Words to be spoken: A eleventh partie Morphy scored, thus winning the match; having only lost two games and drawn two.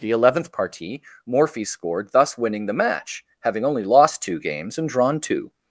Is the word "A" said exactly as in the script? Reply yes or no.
no